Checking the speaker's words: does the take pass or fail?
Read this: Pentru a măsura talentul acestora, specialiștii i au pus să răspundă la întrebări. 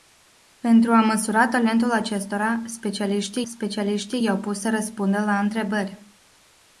fail